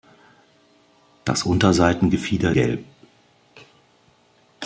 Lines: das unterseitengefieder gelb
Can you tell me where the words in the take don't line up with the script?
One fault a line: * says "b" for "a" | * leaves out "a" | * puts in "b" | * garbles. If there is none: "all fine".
all fine